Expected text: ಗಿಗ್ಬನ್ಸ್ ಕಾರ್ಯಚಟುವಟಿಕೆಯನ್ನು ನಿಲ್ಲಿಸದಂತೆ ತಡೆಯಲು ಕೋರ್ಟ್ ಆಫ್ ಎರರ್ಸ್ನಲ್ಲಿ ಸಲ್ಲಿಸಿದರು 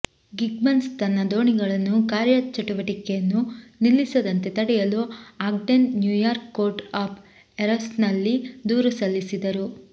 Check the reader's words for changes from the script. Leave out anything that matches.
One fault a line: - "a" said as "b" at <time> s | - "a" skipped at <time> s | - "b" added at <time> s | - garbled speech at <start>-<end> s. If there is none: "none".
- "ತನ್ನ ದೋಣಿಗಳನ್ನು" added at 1.0 s
- "ಆಗ್ಡೆನ್ ನ್ಯೂಯಾರ್ಕ್" added at 5.5 s
- "ದೂರು" added at 8.7 s